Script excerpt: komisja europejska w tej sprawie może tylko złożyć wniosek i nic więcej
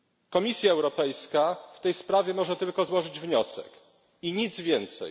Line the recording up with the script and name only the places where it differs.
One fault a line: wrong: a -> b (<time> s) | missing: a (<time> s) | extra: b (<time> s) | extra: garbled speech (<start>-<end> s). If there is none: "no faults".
no faults